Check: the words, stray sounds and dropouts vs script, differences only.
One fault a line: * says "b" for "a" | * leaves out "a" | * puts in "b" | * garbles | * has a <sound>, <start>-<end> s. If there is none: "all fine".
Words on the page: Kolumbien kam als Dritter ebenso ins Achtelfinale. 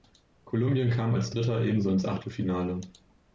all fine